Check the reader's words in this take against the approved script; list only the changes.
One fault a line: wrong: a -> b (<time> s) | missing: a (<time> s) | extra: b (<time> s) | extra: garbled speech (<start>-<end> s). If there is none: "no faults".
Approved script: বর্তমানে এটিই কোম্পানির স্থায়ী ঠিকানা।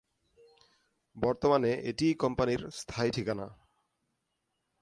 no faults